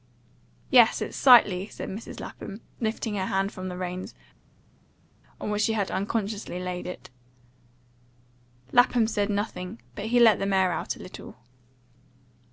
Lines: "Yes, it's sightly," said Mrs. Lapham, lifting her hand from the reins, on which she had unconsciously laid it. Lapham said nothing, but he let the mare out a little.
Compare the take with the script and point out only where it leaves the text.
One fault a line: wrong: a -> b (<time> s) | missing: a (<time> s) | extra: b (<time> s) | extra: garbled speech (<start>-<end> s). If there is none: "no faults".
no faults